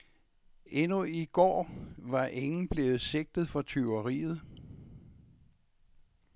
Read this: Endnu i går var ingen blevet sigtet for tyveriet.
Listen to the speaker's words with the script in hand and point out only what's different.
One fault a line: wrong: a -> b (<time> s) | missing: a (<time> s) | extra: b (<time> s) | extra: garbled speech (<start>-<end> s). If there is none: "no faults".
no faults